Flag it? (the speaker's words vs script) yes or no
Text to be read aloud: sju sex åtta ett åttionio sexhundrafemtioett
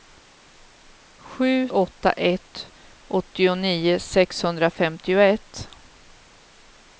yes